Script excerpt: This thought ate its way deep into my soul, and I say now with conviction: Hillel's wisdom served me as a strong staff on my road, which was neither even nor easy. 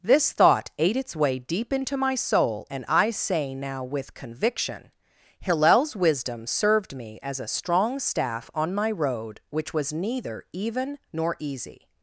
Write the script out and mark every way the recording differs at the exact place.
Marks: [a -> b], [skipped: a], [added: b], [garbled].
This thought ate its way deep into my soul, and I say now with conviction: Hillel's wisdom served me as a strong staff on my road, which was neither even nor easy.